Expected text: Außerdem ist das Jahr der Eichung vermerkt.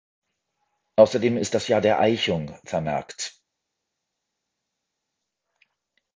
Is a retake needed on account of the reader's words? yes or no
no